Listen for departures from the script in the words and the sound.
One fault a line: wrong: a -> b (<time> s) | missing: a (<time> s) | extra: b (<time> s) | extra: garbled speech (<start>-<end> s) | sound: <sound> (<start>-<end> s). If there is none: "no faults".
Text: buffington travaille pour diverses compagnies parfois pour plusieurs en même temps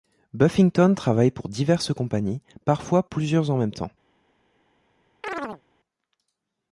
missing: pour (3.0 s)
sound: chirp (5.2-5.6 s)